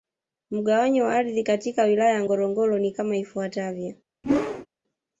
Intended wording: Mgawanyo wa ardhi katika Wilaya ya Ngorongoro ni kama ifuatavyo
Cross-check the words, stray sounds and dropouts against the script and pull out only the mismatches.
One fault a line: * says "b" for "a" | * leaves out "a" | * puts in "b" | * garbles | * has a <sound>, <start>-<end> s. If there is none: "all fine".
* has a whoosh, 4.2-4.7 s